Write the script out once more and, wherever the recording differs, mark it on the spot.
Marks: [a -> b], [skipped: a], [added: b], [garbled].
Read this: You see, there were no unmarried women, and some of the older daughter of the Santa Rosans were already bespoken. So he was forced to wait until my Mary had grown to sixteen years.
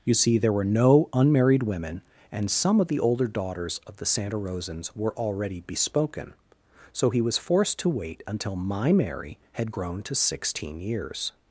You see, there were no unmarried women, and some of the older [daughter -> daughters] of the Santa Rosans were already bespoken. So he was forced to wait until my Mary had grown to sixteen years.